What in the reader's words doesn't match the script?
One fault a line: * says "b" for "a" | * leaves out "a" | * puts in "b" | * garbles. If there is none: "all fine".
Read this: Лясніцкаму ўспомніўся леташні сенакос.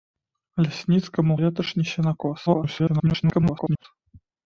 * leaves out "ўспомніўся"
* garbles